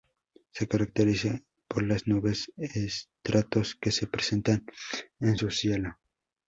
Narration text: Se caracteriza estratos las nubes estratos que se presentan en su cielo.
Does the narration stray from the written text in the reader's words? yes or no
yes